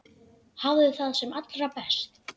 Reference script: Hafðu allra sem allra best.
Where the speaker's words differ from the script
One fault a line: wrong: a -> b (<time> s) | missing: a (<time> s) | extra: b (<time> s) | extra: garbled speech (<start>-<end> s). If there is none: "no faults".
wrong: allra -> það (1.0 s)